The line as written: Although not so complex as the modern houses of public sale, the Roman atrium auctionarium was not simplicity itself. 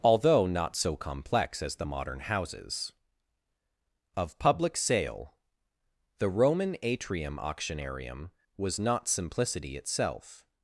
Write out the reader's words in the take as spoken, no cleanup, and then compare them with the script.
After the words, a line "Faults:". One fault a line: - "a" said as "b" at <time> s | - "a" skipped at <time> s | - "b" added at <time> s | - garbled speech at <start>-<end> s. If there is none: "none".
Although not so complex as the modern houses of public sale, the Roman atrium auctionarium was not simplicity itself.
Faults:
none